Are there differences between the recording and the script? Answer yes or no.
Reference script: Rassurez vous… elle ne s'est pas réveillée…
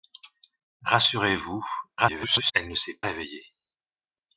yes